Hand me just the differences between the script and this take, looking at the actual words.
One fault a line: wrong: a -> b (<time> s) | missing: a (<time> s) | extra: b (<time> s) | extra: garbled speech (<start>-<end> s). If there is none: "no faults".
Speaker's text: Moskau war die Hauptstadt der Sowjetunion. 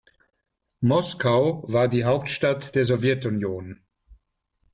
no faults